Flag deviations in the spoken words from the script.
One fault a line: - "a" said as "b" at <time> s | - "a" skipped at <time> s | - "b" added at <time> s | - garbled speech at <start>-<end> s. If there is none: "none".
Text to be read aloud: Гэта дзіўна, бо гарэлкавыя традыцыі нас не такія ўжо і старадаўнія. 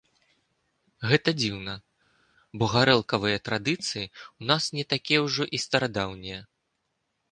- "ў" added at 4.1 s